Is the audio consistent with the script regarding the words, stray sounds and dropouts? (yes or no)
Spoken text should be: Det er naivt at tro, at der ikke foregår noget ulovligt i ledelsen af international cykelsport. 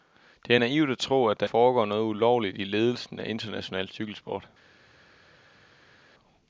no